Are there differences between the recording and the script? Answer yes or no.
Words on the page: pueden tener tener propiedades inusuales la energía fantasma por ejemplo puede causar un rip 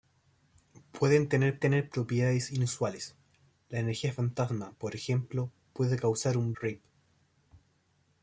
no